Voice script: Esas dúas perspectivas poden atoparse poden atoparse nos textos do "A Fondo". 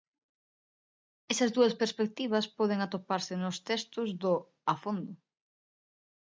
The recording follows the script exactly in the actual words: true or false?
false